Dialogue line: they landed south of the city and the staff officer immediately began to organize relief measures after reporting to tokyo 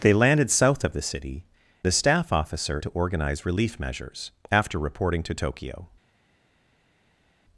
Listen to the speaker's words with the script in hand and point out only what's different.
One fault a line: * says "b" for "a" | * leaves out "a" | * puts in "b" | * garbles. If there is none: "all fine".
* leaves out "and"
* leaves out "immediately began"